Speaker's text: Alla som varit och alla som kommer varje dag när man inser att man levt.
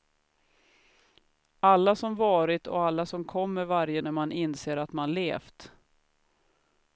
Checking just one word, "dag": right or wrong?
wrong